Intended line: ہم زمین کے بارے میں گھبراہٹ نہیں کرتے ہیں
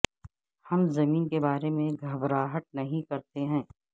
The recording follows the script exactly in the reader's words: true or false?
true